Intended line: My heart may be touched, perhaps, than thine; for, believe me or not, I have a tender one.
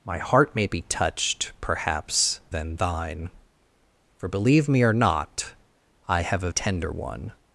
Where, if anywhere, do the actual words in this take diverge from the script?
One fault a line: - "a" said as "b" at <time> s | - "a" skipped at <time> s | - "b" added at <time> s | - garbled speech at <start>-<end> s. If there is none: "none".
none